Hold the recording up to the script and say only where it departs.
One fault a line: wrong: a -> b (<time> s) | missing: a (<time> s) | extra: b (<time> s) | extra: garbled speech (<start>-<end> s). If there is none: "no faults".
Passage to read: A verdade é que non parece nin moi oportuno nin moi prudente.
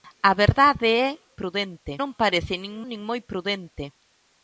wrong: que -> prudente (1.4 s)
missing: moi oportuno (2.7 s)